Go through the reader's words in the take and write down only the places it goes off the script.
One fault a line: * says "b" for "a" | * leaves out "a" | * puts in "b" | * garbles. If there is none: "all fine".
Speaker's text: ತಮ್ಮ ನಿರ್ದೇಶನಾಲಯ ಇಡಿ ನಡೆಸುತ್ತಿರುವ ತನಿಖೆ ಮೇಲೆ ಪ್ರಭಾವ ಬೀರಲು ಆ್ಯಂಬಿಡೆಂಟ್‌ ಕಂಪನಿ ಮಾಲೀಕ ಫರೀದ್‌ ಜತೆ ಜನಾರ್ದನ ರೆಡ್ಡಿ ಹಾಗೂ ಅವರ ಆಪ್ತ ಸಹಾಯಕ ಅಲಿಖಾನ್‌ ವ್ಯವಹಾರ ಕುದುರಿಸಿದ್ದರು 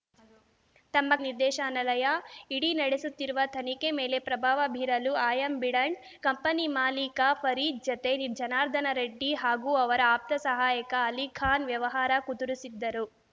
all fine